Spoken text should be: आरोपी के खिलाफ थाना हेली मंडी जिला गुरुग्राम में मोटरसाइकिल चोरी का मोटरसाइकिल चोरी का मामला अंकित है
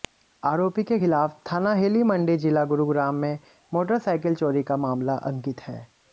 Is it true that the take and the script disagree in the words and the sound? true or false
true